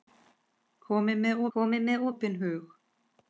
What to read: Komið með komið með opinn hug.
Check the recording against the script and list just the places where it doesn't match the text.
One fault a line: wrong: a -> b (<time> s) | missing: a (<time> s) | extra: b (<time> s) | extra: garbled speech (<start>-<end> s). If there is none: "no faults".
no faults